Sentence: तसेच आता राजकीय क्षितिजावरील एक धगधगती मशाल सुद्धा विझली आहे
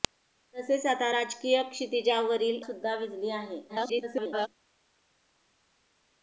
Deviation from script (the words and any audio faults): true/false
true